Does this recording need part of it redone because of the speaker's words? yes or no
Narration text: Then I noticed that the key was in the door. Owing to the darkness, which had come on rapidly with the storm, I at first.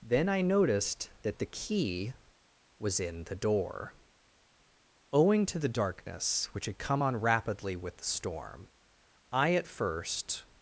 no